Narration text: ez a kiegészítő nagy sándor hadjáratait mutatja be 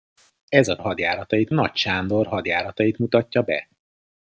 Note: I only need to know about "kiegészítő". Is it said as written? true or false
false